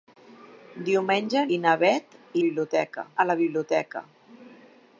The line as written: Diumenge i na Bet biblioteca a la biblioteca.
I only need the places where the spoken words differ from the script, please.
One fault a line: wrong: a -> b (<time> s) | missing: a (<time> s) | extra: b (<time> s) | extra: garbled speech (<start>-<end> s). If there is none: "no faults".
no faults